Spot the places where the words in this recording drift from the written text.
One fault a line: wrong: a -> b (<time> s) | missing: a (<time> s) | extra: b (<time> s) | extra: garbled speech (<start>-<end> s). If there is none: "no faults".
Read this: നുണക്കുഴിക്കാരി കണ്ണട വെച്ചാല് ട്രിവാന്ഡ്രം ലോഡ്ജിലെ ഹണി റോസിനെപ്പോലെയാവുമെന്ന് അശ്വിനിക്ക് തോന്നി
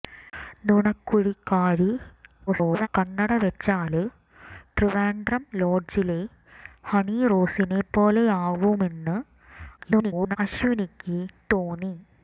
extra: garbled speech (2.5-2.9 s)
extra: garbled speech (9.8-10.4 s)